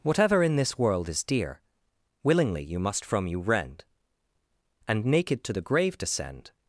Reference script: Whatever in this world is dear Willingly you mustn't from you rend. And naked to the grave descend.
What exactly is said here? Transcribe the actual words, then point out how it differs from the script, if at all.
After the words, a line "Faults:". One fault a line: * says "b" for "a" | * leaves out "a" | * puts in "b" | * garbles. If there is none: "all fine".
Whatever in this world is dear Willingly you must from you rend. And naked to the grave descend.
Faults:
* says "must" for "mustn't"